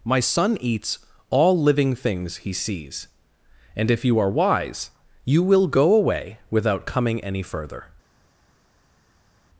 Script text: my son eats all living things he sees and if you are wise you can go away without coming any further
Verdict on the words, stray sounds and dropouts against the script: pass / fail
fail